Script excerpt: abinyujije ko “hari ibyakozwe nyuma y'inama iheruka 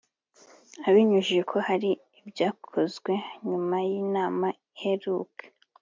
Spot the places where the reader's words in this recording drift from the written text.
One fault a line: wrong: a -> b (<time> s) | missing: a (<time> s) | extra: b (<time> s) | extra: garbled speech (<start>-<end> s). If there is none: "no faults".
no faults